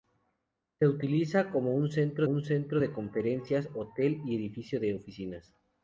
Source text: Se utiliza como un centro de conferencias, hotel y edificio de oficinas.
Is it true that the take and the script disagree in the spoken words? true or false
true